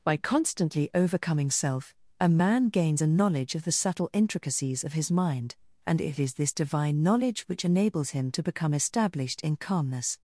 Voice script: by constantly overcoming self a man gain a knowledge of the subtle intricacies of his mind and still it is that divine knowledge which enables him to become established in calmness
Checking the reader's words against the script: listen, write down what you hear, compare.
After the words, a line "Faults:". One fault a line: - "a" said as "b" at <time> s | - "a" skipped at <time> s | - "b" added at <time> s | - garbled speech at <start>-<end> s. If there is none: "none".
by constantly overcoming self a man gains a knowledge of the subtle intricacies of his mind and it is this divine knowledge which enables him to become established in calmness
Faults:
- "gain" said as "gains" at 2.7 s
- "still" skipped at 6.0 s
- "that" said as "this" at 6.4 s